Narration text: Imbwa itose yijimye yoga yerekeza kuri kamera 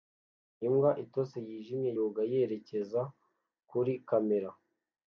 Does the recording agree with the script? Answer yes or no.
yes